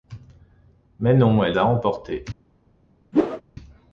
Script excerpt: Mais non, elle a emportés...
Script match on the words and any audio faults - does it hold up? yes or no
no